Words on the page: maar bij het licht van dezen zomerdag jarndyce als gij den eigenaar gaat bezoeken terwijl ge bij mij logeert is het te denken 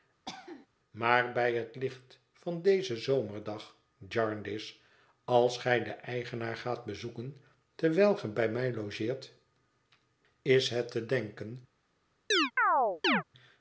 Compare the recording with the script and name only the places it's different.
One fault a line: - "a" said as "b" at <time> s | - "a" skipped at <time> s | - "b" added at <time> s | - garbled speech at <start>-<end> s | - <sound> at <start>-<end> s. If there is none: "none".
- cough at 0.3-0.7 s
- chirp at 12.3-13.2 s